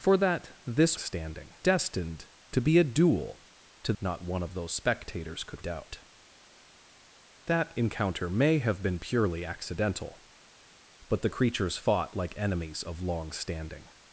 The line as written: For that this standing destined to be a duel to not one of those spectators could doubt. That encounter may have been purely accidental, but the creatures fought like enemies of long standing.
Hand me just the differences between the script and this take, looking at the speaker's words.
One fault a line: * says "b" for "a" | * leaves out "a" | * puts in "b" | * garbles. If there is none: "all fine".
all fine